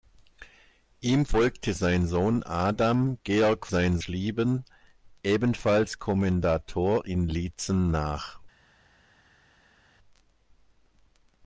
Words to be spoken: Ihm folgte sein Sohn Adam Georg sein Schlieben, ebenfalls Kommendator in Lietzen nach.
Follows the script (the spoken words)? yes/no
yes